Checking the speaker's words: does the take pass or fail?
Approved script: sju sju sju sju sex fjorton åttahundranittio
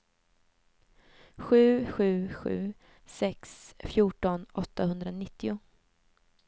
fail